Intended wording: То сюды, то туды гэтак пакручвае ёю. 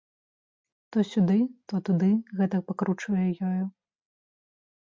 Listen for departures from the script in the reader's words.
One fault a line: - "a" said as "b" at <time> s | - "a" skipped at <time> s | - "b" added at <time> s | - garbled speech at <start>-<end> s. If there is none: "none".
none